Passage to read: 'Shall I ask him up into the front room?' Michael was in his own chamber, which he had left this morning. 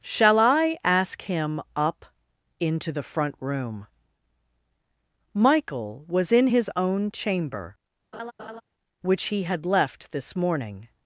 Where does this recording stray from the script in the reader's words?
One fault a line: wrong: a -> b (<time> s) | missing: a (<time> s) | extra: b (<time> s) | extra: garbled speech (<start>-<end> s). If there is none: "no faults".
no faults